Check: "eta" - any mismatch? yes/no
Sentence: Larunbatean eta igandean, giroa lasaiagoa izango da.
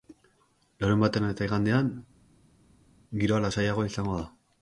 no